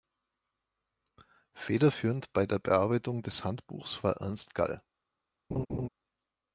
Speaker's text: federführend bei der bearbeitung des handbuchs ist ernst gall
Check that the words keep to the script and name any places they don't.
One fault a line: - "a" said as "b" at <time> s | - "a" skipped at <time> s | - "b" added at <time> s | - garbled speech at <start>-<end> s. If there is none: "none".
- "ist" said as "war" at 4.0 s